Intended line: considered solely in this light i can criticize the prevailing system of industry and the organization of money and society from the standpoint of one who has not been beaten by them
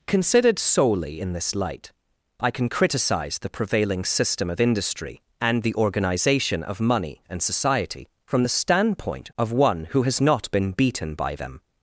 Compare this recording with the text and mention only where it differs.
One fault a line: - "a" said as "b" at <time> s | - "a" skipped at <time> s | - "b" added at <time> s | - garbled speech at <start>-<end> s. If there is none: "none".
none